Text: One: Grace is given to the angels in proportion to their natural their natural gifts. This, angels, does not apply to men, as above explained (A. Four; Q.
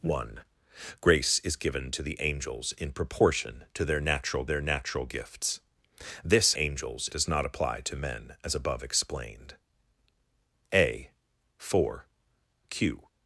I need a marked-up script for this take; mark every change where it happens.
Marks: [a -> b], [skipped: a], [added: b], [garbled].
One: Grace is given to the angels in proportion to their natural their natural gifts. This, angels, does not apply to men, as above explained (A. Four; Q.